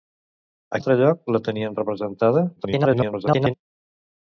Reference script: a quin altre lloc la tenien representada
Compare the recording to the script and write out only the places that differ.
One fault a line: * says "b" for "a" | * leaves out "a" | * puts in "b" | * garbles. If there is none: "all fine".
* leaves out "quin"
* garbles